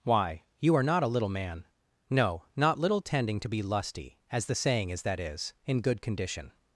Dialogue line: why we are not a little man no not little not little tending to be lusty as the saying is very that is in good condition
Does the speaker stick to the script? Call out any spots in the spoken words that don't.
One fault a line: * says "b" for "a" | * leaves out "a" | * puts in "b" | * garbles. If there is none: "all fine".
* says "you" for "we"
* leaves out "not little"
* leaves out "very"